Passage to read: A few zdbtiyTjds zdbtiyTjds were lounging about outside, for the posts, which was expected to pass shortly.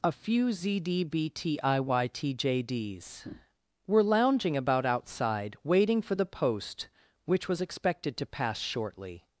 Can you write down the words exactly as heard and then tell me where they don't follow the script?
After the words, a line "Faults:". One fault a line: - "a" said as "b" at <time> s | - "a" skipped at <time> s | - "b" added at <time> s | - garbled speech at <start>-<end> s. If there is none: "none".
A few zdbtiyTjds were lounging about outside, waiting for the post, which was expected to pass shortly.
Faults:
- "zdbtiyTjds" skipped at 1.6 s
- "waiting" added at 5.6 s
- "posts" said as "post" at 6.2 s